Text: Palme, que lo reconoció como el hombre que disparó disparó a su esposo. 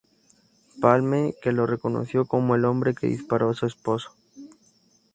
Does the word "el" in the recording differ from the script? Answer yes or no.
no